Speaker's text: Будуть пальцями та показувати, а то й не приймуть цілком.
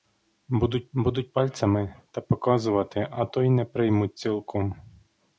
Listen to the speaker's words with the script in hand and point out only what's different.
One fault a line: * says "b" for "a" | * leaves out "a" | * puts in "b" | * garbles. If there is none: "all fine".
* puts in "будуть"